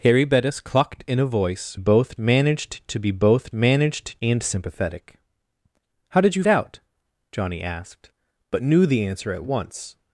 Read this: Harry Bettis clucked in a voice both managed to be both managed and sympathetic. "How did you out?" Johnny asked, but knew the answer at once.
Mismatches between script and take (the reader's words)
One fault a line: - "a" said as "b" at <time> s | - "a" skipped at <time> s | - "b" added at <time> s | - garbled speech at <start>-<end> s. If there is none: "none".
none